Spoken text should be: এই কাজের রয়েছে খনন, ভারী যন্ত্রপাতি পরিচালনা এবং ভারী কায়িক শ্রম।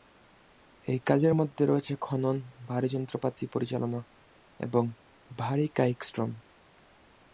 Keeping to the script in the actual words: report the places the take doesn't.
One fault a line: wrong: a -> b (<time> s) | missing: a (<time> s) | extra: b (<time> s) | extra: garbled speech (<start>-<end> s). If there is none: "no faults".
extra: মধ্যে (1.3 s)